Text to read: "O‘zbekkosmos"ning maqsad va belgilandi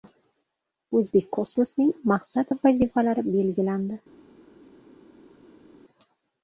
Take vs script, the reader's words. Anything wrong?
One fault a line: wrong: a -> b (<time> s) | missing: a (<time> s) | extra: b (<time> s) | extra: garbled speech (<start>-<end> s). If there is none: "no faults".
extra: vazifalari (2.7 s)